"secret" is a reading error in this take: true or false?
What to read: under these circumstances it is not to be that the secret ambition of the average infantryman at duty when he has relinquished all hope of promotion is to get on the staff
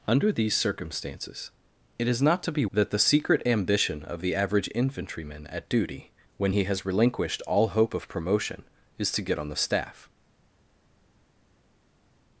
false